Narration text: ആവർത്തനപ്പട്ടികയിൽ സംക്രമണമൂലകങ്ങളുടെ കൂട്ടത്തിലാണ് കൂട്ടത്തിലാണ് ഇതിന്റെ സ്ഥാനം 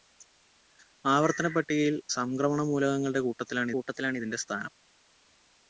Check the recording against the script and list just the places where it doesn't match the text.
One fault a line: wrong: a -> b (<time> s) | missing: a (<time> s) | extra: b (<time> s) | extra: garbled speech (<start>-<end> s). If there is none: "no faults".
no faults